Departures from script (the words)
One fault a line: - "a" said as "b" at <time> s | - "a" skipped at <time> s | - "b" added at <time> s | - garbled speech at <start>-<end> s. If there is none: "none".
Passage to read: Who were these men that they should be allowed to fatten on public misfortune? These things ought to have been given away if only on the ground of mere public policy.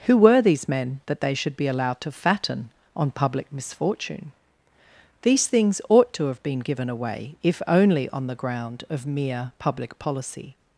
none